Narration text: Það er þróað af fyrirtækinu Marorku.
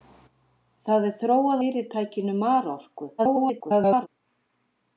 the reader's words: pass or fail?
fail